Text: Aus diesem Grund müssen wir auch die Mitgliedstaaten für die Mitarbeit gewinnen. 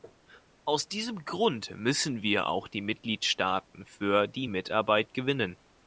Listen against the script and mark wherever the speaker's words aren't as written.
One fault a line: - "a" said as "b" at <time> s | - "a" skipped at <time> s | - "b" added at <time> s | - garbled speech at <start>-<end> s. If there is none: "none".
none